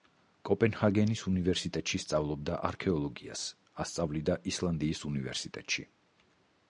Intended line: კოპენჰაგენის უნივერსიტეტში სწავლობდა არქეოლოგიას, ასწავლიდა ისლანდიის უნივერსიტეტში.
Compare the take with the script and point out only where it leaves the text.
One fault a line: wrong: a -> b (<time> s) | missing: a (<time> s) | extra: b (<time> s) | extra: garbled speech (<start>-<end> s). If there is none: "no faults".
no faults